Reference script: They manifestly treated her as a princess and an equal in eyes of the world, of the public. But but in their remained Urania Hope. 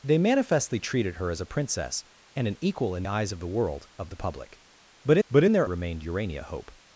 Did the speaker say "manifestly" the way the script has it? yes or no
yes